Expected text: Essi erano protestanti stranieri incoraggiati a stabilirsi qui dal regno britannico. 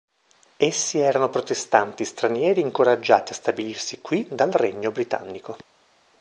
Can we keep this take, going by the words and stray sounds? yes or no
yes